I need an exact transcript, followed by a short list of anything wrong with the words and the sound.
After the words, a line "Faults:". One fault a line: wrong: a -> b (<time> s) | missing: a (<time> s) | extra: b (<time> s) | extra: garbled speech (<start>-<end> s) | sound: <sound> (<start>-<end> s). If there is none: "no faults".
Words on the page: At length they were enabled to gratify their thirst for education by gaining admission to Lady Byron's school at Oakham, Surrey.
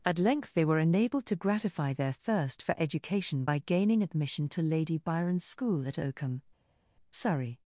At length they were enabled to gratify their thirst for education by gaining admission to Lady Byron's school at Oakham, Surrey.
Faults:
no faults